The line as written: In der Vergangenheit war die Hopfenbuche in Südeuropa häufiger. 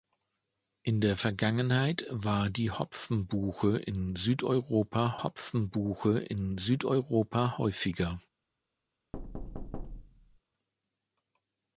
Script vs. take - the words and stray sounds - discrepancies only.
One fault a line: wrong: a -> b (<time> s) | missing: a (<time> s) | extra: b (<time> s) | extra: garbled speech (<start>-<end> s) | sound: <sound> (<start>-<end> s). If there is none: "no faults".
extra: Hopfenbuche in Südeuropa (5.2 s)
sound: thud (9.1-10.4 s)